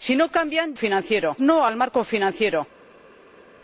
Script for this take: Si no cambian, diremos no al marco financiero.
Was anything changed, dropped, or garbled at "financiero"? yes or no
no